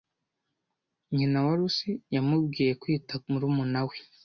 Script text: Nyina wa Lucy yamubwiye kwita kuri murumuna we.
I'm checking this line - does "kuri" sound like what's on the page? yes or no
no